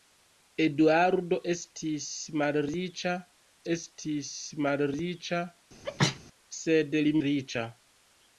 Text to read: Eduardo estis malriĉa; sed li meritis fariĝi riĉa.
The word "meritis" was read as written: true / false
false